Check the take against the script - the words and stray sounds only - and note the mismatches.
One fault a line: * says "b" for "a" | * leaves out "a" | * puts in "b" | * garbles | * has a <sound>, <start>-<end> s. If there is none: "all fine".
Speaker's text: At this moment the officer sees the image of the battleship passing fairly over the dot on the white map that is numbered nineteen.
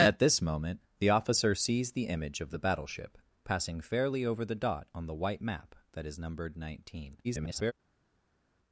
* garbles